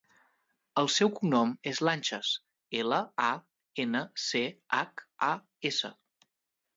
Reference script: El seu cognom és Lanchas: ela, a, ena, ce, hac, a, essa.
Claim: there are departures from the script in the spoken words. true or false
false